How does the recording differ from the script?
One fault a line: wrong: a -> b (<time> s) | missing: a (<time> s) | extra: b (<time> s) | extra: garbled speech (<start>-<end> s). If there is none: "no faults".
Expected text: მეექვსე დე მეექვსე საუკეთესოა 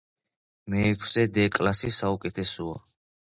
wrong: მეექვსე -> კლასი (1.6 s)